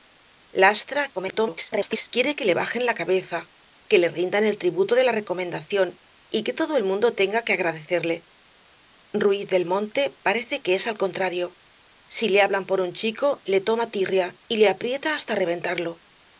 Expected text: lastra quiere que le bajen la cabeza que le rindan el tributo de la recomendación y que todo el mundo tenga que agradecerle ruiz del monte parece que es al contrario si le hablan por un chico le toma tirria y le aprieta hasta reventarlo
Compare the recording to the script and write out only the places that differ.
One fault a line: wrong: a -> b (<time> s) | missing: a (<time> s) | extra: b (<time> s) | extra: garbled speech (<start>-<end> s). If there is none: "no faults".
extra: garbled speech (1.1-2.1 s)